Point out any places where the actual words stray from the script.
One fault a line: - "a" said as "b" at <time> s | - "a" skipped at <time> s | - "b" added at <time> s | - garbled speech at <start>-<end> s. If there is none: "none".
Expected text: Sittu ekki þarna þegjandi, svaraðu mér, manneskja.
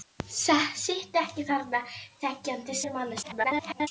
- "svaraðu" skipped at 2.8 s
- garbled speech at 3.2-3.9 s